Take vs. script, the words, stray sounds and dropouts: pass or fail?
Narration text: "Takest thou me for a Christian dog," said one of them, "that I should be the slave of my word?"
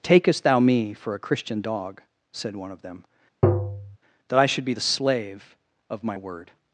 fail